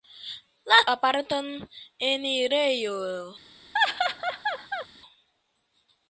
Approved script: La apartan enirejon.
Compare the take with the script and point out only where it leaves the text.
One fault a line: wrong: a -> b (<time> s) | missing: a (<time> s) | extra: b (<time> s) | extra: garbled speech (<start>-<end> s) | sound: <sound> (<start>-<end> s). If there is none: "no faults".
sound: laugh (3.7-4.9 s)